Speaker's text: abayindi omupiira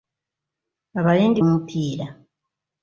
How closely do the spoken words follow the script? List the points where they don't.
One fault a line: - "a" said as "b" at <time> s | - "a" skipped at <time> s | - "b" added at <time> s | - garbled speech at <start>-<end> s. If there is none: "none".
none